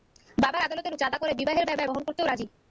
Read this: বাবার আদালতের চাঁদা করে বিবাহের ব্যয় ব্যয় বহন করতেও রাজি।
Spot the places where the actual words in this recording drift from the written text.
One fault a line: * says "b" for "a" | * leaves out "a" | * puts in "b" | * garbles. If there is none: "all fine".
all fine